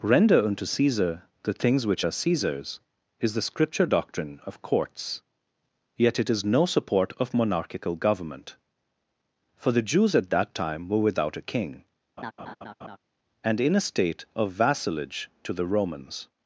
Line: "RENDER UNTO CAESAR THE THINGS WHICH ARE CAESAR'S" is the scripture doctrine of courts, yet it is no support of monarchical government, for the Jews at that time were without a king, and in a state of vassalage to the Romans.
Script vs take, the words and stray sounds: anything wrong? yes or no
yes